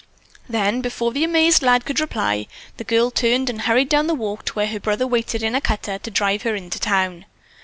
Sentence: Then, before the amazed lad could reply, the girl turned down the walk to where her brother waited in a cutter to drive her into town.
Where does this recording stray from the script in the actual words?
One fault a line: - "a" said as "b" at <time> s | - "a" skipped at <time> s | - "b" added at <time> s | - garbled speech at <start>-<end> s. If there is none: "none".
- "and hurried" added at 3.5 s